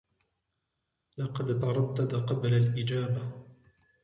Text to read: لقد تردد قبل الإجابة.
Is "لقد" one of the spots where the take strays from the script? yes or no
no